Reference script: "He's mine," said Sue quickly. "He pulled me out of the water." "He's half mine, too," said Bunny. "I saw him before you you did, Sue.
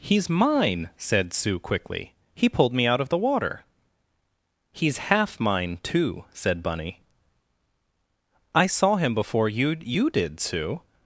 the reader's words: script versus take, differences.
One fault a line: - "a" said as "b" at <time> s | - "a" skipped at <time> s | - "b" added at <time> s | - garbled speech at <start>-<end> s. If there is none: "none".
none